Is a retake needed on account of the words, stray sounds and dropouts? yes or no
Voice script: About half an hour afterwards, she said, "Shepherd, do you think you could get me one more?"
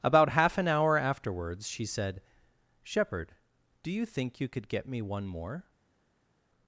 no